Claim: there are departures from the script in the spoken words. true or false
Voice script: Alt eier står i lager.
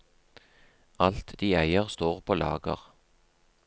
true